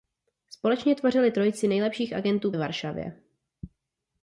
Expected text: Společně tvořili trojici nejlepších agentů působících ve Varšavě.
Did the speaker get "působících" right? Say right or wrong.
wrong